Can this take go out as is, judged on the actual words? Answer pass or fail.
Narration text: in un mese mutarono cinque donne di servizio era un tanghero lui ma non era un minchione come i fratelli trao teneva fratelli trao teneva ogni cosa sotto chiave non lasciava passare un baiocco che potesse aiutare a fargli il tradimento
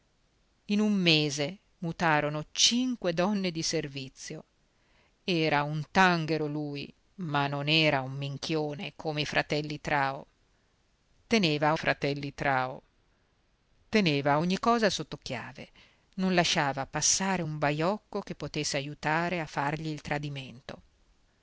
pass